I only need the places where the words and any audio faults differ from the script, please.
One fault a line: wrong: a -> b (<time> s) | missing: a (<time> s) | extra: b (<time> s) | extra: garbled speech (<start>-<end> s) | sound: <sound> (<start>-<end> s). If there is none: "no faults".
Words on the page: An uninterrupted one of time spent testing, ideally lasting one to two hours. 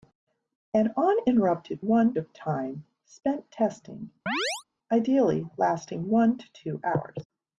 sound: chirp (4.3-4.6 s)